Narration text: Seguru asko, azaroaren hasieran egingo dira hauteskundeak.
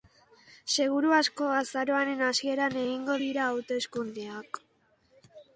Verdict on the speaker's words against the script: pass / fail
pass